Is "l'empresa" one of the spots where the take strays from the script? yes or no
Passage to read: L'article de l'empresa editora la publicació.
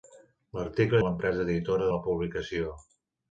no